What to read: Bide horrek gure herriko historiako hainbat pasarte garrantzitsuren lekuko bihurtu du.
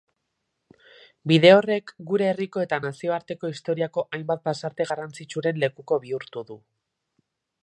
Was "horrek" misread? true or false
false